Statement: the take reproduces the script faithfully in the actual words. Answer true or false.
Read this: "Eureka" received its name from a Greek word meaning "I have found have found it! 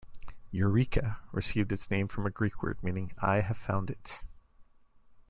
false